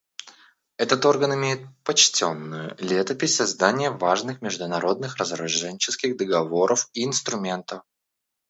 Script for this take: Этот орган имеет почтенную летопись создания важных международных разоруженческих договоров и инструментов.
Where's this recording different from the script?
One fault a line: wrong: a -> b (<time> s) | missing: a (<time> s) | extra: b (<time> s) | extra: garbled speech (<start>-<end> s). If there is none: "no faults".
no faults